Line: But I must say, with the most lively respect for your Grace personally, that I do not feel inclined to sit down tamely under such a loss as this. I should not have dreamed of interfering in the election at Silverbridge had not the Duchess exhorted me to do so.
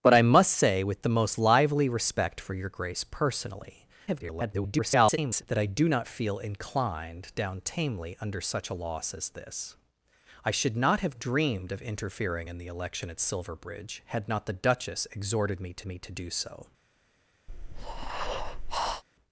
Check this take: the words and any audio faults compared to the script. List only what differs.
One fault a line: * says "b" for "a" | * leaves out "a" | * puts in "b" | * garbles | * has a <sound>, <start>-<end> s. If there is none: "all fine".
* garbles
* leaves out "to sit"
* puts in "me to"
* has a breath, 17.5-19.0 s